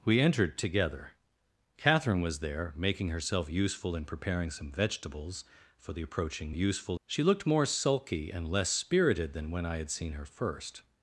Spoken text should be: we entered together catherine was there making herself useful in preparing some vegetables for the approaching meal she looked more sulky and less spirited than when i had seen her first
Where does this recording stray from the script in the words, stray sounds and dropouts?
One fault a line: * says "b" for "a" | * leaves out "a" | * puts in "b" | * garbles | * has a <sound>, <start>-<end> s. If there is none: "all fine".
* says "useful" for "meal"